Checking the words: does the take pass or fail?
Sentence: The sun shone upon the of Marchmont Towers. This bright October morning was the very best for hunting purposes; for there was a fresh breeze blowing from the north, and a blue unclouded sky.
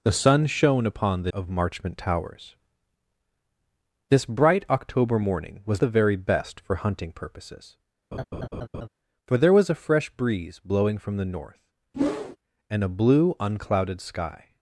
pass